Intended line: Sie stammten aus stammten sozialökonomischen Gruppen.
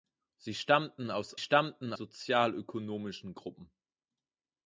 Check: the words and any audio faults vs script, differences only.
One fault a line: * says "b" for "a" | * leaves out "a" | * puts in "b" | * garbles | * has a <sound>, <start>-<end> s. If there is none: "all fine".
all fine